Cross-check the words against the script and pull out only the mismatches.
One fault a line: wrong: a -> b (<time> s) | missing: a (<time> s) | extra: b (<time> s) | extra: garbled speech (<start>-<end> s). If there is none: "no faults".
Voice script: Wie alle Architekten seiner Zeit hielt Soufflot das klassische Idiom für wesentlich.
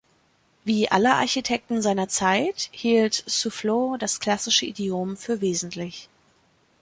no faults